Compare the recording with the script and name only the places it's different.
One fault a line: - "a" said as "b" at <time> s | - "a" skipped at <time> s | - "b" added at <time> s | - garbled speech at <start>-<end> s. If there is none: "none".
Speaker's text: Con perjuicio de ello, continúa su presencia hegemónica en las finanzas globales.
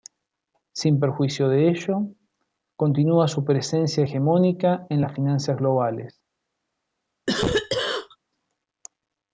- "Con" said as "Sin" at 0.7 s